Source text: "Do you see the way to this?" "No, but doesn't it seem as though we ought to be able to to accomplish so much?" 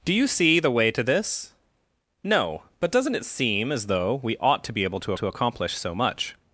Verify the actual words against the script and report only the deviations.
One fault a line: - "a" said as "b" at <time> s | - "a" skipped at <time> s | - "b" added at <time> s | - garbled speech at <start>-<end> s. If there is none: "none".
none